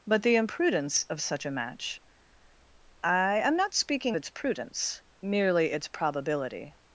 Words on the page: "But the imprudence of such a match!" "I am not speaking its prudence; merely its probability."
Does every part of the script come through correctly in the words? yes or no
yes